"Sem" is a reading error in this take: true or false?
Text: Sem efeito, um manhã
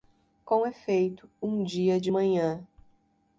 true